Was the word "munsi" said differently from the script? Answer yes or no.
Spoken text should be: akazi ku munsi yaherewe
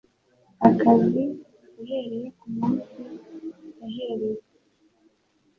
no